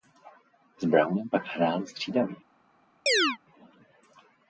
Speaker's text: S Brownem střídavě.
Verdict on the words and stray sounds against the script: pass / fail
fail